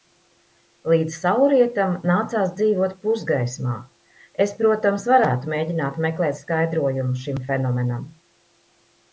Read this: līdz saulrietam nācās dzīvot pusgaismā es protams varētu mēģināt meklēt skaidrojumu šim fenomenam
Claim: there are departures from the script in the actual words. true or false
false